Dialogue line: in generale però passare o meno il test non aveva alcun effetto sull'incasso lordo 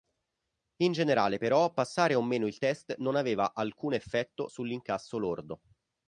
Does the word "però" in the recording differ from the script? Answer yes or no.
no